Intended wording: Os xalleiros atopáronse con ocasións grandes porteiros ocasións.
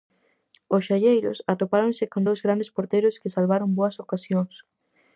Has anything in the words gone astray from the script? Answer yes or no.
yes